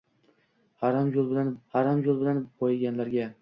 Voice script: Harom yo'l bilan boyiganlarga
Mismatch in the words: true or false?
true